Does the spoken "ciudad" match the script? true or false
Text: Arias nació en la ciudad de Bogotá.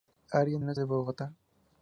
false